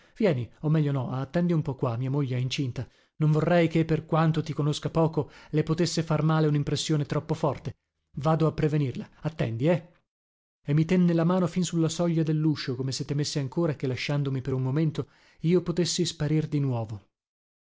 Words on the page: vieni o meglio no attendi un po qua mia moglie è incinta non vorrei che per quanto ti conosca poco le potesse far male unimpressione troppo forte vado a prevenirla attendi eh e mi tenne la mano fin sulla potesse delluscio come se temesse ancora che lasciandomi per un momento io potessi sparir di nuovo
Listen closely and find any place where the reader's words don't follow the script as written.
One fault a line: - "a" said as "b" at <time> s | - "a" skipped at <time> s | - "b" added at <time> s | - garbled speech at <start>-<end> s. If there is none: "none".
- "potesse" said as "soglia" at 11.9 s